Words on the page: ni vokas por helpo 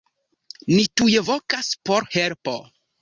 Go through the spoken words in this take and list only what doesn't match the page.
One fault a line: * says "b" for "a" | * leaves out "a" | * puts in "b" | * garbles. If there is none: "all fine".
* puts in "tuj"